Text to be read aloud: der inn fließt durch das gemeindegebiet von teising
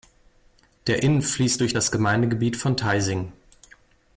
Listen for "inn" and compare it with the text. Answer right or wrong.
right